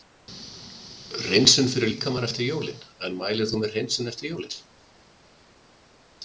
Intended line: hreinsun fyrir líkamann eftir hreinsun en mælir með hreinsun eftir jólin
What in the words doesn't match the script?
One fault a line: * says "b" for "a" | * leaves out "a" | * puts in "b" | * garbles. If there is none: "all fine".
* says "jólin" for "hreinsun"
* puts in "þú"